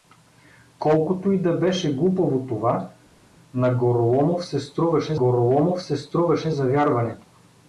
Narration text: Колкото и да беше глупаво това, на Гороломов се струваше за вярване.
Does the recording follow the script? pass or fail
fail